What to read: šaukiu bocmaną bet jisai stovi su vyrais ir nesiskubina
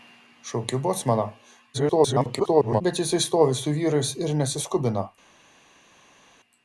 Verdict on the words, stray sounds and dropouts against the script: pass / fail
fail